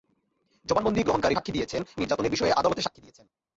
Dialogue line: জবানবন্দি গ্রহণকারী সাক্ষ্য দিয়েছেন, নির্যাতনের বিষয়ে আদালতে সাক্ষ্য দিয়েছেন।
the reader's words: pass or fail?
pass